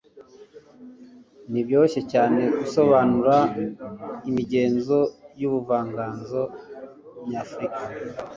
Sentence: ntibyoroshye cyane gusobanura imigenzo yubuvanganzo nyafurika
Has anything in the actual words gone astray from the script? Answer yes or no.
no